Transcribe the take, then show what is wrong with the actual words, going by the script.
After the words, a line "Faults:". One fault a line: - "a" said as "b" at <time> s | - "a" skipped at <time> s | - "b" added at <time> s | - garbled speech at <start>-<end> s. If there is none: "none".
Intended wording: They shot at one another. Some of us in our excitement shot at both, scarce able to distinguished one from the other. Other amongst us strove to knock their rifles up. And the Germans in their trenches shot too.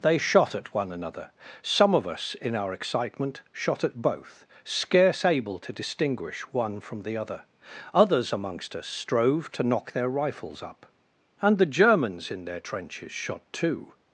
They shot at one another. Some of us in our excitement shot at both, scarce able to distinguish one from the other. Others amongst us strove to knock their rifles up. And the Germans in their trenches shot too.
Faults:
- "distinguished" said as "distinguish" at 5.7 s
- "Other" said as "Others" at 7.9 s